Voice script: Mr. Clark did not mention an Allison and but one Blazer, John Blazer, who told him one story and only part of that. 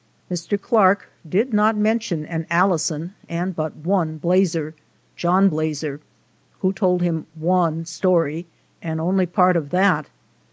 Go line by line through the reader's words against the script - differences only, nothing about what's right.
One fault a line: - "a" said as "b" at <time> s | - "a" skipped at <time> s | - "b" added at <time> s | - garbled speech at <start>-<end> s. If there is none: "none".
none